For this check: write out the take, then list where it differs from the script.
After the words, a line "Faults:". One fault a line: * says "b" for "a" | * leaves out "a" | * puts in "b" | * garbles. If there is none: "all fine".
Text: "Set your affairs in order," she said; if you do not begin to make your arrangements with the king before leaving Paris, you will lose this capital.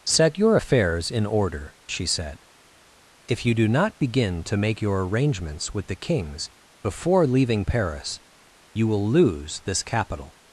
"Set your affairs in order," she said; if you do not begin to make your arrangements with the kings before leaving Paris, you will lose this capital.
Faults:
* says "kings" for "king"